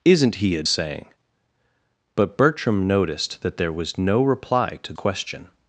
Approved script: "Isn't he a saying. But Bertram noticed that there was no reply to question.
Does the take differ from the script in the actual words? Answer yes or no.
no